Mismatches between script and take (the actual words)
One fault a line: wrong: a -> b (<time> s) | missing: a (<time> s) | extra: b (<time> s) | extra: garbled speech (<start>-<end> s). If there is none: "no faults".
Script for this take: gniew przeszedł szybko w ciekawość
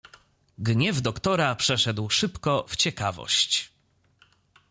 extra: doktora (1.0 s)